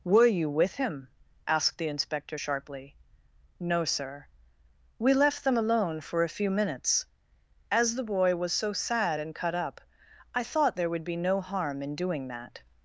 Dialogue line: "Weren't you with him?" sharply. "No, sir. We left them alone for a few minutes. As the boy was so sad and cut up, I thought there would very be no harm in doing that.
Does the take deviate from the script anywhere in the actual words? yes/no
yes